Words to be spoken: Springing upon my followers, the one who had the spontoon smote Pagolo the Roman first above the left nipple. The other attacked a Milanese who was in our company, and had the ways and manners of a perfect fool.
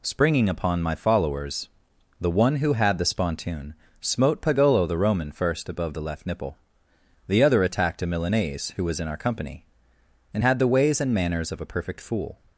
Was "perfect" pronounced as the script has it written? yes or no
yes